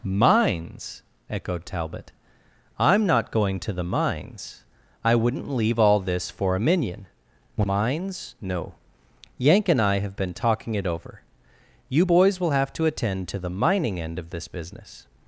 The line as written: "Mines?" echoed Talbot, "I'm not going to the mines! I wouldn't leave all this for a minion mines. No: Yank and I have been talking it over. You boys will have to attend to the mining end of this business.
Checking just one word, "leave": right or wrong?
right